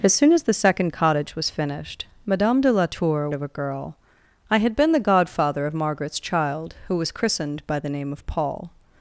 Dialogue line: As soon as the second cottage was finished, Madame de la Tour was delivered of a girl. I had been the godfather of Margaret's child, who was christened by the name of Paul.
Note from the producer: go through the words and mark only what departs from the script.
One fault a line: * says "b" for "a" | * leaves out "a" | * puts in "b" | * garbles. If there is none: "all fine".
* leaves out "was delivered"